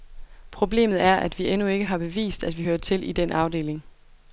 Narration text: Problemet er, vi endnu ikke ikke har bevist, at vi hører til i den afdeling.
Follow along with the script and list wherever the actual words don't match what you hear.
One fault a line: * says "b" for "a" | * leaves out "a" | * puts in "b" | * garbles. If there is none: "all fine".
* puts in "at"
* leaves out "ikke"